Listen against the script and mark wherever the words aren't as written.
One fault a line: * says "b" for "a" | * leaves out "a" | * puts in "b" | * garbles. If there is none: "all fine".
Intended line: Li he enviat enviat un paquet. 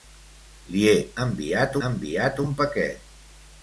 all fine